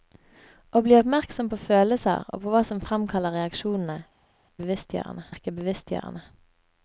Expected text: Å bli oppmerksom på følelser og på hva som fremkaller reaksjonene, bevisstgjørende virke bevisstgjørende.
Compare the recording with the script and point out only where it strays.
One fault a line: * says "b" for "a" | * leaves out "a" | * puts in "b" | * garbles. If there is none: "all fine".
all fine